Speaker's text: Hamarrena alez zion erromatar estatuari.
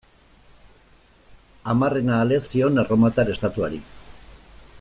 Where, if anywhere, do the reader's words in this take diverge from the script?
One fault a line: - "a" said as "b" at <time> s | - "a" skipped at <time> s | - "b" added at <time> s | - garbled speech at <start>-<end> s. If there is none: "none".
none